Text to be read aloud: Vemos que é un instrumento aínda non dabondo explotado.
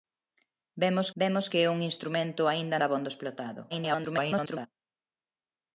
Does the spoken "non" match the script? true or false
false